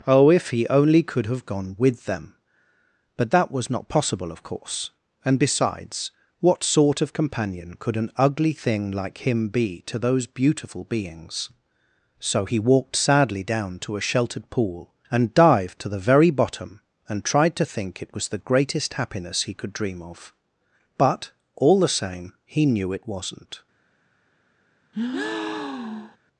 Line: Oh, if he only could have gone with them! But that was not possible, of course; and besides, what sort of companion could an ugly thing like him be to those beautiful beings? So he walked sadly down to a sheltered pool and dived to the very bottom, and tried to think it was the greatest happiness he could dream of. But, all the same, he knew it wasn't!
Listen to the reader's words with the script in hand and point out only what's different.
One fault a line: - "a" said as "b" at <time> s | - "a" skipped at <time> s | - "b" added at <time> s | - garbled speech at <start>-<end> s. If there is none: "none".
none